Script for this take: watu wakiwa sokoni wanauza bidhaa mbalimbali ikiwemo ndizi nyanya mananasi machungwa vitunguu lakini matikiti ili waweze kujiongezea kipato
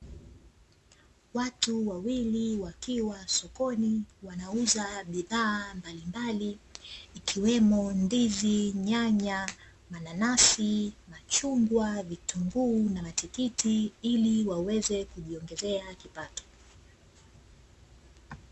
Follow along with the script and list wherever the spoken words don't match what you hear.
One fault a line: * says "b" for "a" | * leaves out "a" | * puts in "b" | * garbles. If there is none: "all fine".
* puts in "wawili"
* says "na" for "lakini"